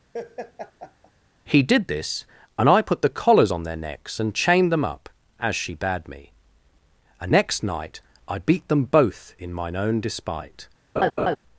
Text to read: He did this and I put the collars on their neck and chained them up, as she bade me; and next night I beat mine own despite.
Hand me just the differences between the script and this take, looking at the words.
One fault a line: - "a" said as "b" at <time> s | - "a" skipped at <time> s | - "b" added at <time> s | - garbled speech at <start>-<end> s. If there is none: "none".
- "neck" said as "necks" at 3.8 s
- "them both in" added at 8.7 s